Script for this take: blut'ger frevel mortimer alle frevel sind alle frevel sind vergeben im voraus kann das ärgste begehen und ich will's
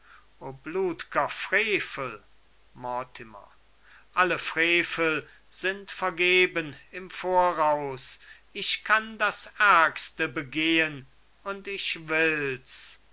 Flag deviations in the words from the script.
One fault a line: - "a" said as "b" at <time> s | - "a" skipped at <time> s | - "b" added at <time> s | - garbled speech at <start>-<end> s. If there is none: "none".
- "alle frevel sind" skipped at 5.9 s
- "ich" added at 8.5 s